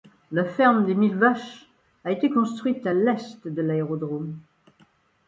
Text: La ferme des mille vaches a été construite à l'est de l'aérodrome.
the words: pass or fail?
pass